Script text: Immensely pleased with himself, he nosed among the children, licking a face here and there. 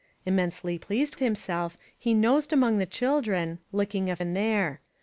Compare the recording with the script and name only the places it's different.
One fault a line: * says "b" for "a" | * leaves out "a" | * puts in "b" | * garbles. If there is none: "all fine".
* leaves out "with"
* leaves out "face here"